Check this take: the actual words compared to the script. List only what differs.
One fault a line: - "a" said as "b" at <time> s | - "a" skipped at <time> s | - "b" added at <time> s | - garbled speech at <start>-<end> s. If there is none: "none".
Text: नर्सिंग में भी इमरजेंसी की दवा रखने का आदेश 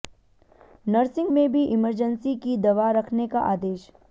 none